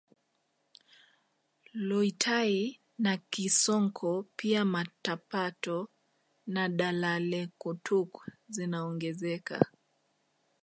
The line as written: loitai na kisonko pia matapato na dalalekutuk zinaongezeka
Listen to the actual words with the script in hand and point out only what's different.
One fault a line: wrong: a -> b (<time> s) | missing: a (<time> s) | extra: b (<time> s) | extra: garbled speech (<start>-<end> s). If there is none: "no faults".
no faults